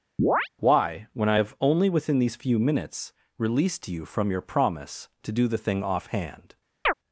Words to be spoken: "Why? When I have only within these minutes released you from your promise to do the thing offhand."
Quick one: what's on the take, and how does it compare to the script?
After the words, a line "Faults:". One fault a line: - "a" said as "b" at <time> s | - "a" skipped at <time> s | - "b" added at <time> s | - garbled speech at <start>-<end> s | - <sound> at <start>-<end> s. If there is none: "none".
"Why? When I have only within these few minutes released you from your promise to do the thing offhand."
Faults:
- chirp at 0.2-0.5 s
- "few" added at 2.4 s
- chirp at 6.9-6.9 s